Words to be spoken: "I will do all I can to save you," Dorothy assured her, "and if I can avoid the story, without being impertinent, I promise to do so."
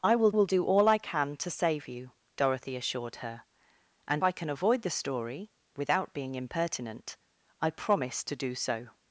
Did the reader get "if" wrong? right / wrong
wrong